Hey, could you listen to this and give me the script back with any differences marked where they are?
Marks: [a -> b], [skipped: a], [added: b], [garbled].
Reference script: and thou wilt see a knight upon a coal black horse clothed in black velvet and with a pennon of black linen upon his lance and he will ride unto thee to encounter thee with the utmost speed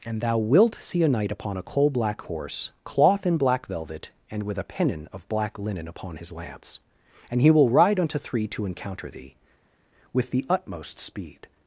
and thou wilt see a knight upon a coal black horse [clothed -> cloth] in black velvet and with a pennon of black linen upon his lance and he will ride unto [thee -> three] to encounter thee with the utmost speed